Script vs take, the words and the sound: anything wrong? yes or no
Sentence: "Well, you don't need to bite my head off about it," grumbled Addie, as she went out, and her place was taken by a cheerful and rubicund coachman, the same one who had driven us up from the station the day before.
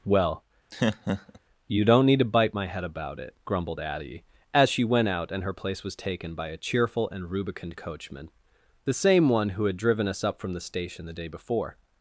yes